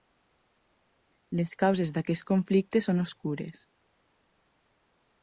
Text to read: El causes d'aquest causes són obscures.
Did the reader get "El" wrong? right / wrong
wrong